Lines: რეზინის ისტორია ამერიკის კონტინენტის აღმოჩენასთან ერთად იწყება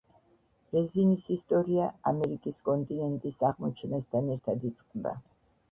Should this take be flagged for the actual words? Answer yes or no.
no